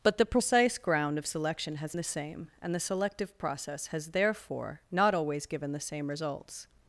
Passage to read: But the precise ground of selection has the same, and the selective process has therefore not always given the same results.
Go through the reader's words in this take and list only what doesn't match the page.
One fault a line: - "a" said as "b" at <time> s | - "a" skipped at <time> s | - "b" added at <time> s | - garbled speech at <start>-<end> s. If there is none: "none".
none